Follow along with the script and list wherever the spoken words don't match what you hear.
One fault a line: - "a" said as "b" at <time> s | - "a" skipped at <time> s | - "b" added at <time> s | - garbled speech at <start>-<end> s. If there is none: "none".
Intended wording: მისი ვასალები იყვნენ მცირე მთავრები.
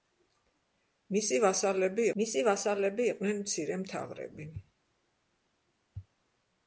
- "მისი ვასალები" added at 2.2 s